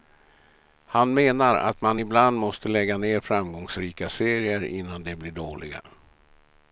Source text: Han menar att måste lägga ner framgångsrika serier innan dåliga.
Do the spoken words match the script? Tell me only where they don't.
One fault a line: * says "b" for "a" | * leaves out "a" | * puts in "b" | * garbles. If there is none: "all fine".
* puts in "man ibland"
* puts in "de blir"